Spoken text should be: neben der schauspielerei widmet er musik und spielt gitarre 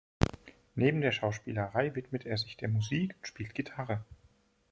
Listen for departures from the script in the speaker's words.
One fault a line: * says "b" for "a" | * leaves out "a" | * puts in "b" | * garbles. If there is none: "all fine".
* puts in "sich der"